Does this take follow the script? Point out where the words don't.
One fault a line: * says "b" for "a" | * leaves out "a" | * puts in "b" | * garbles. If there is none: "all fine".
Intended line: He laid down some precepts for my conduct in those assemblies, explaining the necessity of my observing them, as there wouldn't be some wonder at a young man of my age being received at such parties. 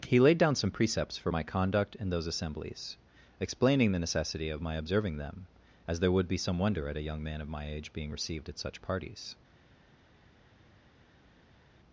* says "would" for "wouldn't"